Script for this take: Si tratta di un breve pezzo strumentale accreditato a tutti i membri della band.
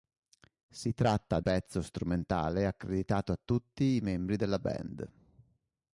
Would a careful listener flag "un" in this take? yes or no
yes